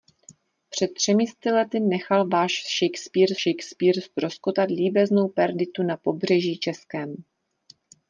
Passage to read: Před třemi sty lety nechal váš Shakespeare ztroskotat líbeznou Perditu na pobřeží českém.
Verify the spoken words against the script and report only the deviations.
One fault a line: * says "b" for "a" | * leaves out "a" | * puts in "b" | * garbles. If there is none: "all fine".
* puts in "Shakespeare"